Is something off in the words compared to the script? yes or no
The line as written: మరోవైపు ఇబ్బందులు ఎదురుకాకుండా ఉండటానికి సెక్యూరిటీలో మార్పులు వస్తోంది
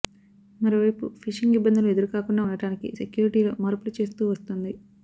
yes